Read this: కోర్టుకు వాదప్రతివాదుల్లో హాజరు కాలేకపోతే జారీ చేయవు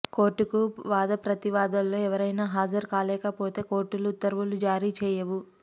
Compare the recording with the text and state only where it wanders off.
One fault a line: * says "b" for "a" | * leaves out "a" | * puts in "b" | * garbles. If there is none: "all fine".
* puts in "ఎవరైనా"
* puts in "కోర్టులు ఉత్తర్వులు"